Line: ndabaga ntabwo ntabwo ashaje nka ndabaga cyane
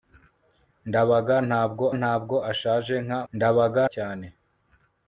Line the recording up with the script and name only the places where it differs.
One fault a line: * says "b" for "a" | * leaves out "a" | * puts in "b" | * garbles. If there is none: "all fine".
all fine